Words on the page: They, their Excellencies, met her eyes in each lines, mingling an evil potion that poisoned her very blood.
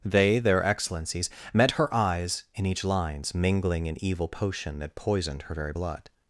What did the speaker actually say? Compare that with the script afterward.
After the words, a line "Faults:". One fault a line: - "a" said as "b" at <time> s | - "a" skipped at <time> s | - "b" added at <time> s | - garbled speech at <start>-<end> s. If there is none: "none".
They, their Excellencies, met her eyes in each lines, mingling an evil potion that poisoned her very blood.
Faults:
none